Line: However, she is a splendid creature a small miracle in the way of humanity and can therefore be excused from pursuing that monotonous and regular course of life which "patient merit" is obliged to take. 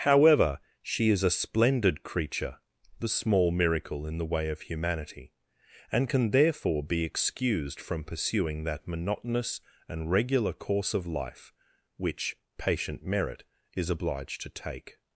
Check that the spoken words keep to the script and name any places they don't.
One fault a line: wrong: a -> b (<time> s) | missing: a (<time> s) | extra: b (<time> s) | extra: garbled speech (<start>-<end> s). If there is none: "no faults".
wrong: a -> the (3.0 s)